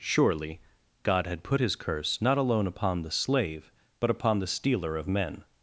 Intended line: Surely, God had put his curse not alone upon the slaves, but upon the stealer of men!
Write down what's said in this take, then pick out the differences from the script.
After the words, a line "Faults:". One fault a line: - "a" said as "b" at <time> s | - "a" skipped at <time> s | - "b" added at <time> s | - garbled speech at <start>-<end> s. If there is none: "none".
Surely, God had put his curse not alone upon the slave, but upon the stealer of men!
Faults:
- "slaves" said as "slave" at 3.1 s